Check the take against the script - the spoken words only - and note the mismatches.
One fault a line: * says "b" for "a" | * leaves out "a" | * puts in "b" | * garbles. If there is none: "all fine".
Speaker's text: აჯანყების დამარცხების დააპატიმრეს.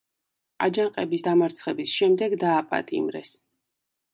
* puts in "შემდეგ"